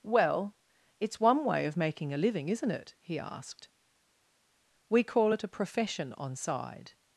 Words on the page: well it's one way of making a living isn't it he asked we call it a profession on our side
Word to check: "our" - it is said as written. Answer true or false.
false